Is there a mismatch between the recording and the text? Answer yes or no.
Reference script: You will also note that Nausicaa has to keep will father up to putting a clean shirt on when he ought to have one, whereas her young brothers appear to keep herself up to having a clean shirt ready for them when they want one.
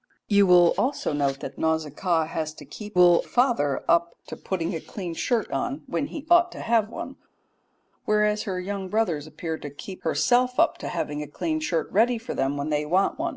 no